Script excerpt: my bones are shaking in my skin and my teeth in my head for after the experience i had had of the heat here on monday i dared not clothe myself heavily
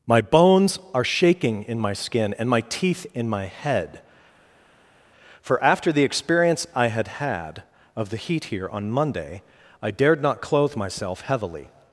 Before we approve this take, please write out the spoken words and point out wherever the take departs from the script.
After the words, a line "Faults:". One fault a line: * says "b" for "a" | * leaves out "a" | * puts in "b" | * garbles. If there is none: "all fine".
my bones are shaking in my skin and my teeth in my head for after the experience i had had of the heat here on monday i dared not clothe myself heavily
Faults:
all fine